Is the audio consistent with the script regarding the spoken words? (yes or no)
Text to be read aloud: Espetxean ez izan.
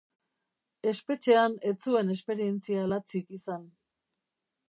no